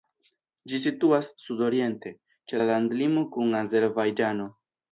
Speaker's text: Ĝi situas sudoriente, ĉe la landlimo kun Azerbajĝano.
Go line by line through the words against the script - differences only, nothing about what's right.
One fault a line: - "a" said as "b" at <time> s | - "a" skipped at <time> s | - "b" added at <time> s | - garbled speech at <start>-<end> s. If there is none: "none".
none